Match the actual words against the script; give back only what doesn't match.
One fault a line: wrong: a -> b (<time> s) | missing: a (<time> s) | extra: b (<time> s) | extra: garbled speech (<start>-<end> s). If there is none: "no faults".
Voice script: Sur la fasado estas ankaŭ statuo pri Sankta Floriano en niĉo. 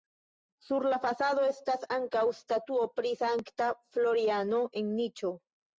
no faults